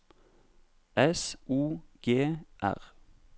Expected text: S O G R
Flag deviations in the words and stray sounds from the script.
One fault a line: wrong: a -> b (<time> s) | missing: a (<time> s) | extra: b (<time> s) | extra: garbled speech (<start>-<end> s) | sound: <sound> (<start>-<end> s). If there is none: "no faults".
no faults